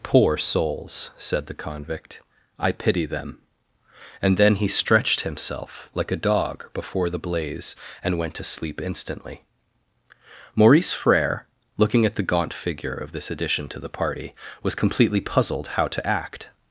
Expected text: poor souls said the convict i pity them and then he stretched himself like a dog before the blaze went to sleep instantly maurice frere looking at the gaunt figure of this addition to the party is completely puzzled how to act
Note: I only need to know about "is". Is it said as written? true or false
false